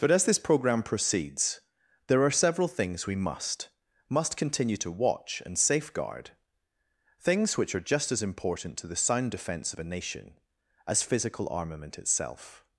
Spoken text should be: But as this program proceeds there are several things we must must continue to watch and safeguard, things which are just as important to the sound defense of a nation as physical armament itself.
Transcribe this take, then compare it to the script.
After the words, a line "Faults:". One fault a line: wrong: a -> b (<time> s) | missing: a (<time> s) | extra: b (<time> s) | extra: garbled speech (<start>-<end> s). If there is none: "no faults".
But as this program proceeds there are several things we must must continue to watch and safeguard, things which are just as important to the sound defense of a nation as physical armament itself.
Faults:
no faults